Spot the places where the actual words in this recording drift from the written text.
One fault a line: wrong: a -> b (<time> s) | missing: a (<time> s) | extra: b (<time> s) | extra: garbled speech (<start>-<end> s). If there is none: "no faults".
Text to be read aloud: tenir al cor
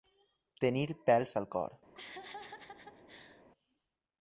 extra: pèls (1.1 s)